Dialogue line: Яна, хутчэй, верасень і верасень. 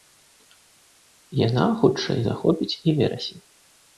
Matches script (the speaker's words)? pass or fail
fail